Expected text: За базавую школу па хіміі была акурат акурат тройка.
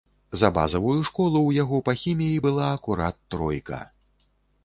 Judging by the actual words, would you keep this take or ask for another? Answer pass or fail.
fail